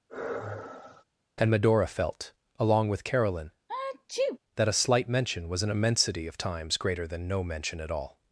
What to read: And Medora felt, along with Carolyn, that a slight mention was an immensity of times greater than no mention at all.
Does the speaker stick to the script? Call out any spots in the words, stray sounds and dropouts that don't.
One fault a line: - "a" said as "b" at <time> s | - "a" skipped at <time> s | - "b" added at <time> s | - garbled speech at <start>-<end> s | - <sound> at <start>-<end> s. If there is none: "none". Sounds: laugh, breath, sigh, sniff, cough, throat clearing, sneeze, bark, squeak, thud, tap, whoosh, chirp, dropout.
- sigh at 0.1-1.0 s
- sneeze at 3.7-4.4 s